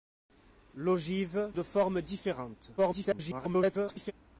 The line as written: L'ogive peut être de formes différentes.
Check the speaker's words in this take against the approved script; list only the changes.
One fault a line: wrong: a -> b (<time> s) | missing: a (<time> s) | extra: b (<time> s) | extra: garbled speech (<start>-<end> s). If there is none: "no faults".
missing: peut être (1.5 s)
extra: garbled speech (2.8-4.1 s)